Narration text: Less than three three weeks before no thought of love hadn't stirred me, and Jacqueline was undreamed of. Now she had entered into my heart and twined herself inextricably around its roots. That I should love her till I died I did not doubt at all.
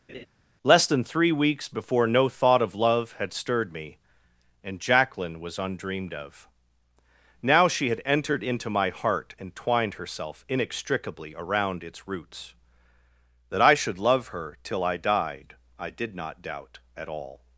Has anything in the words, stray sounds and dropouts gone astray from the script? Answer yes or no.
yes